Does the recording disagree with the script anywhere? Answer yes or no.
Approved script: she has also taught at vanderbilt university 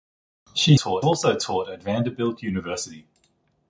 yes